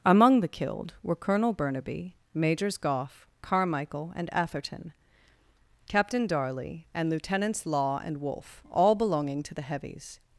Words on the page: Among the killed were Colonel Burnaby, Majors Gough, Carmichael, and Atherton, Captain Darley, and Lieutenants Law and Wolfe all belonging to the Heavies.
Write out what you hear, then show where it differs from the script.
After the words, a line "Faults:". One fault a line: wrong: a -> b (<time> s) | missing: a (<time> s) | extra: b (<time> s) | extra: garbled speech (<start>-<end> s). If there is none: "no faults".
Among the killed were Colonel Burnaby, Majors Gough, Carmichael, and Atherton, Captain Darley, and Lieutenants Law and Wolfe all belonging to the Heavies.
Faults:
no faults